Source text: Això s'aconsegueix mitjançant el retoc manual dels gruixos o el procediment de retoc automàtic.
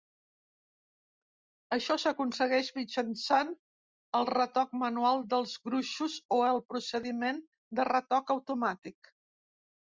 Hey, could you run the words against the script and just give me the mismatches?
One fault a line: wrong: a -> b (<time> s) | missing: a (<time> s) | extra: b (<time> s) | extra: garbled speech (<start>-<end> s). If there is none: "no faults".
no faults